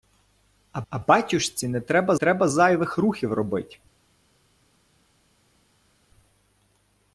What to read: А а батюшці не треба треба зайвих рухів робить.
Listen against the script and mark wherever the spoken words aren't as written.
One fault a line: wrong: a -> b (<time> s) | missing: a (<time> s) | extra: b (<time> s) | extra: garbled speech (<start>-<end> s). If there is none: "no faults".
no faults